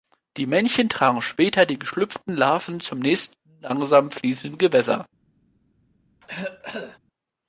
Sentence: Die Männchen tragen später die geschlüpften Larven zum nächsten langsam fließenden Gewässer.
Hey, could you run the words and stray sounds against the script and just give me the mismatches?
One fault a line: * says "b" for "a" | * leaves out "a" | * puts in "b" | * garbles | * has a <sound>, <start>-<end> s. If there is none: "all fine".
* has a cough, 6.2-7.0 s